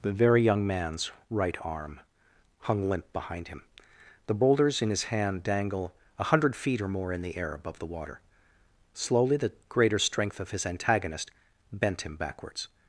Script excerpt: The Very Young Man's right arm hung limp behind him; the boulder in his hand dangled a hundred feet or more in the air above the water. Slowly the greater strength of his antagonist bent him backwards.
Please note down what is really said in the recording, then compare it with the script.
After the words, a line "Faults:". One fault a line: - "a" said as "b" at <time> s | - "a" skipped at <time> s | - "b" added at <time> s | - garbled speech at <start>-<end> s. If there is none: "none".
The Very Young Man's right arm hung limp behind him; the boulders in his hand dangle a hundred feet or more in the air above the water. Slowly the greater strength of his antagonist bent him backwards.
Faults:
- "boulder" said as "boulders" at 4.3 s
- "dangled" said as "dangle" at 5.4 s